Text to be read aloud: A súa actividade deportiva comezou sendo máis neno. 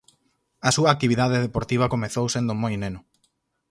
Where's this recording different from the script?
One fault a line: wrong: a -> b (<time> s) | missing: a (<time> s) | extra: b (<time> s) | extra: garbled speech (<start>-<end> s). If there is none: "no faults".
wrong: máis -> moi (2.6 s)